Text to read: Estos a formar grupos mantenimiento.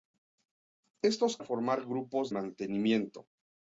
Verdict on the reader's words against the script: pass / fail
pass